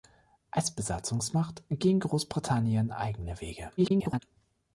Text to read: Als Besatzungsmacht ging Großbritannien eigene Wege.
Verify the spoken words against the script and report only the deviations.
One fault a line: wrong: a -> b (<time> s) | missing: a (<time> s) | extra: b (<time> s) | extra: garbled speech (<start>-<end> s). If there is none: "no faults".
extra: garbled speech (3.8-4.2 s)